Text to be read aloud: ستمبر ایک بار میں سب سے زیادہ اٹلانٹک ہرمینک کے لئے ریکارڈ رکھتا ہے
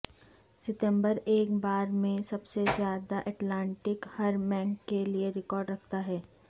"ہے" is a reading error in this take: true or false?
false